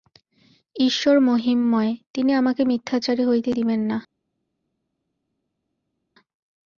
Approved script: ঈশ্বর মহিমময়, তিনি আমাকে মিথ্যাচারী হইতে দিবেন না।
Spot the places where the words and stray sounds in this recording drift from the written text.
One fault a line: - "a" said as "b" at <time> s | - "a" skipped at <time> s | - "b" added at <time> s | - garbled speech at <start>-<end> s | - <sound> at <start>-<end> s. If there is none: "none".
none